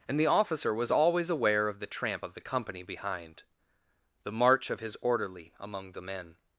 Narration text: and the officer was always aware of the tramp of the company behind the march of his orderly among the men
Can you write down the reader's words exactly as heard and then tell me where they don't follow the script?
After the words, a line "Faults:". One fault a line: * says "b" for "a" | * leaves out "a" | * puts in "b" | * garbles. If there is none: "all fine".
and the officer was always aware of the tramp of the company behind the march of his orderly among the men
Faults:
all fine